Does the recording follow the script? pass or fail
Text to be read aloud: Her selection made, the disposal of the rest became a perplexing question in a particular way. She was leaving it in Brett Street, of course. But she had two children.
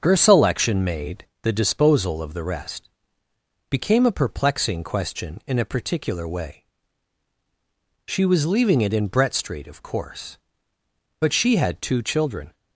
pass